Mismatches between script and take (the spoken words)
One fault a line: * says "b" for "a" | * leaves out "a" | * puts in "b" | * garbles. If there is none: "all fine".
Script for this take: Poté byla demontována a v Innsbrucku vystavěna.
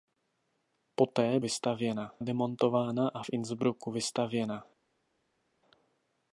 * says "vystavěna" for "byla"